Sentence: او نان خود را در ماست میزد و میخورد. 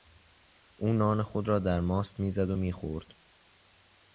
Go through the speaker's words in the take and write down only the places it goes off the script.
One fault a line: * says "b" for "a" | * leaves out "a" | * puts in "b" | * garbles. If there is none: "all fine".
all fine